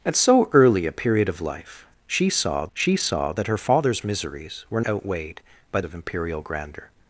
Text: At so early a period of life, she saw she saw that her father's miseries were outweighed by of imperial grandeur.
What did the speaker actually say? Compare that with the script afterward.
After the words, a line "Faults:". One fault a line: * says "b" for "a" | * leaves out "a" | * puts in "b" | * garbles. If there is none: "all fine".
At so early a period of life, she saw she saw that her father's miseries were outweighed by of imperial grandeur.
Faults:
all fine